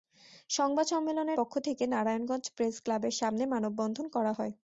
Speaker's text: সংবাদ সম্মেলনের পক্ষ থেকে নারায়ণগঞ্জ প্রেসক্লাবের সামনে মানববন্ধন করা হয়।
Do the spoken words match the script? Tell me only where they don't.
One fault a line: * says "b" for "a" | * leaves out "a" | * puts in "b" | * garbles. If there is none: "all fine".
all fine